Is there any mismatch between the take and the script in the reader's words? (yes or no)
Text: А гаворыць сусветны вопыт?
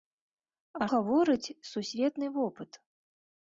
no